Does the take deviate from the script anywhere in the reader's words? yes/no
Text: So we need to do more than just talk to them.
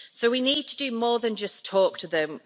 no